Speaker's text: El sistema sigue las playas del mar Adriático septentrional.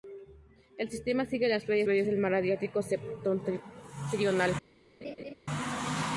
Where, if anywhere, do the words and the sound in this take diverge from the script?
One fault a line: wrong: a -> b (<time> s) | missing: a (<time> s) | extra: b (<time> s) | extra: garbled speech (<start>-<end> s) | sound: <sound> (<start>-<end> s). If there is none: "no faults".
extra: playas (1.8 s)
sound: laugh (5.0-5.3 s)